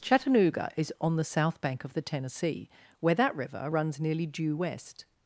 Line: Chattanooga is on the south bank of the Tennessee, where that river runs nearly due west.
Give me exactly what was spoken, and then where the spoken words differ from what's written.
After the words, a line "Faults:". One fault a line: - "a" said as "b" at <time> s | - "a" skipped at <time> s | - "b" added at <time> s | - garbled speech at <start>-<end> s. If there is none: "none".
Chattanooga is on the south bank of the Tennessee, where that river runs nearly due west.
Faults:
none